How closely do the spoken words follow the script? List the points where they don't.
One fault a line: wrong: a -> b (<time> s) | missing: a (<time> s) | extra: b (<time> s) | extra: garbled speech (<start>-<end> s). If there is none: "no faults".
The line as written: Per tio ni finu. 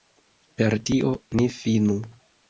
no faults